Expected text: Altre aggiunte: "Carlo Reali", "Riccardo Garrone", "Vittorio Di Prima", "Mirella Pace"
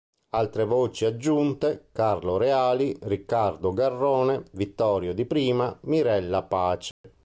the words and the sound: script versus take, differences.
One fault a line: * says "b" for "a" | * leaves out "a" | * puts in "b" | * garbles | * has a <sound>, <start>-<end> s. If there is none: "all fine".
* puts in "voci"
* has a dropout, 6.9-7.0 s